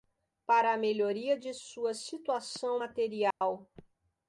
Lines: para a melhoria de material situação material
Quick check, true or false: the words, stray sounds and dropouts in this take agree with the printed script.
false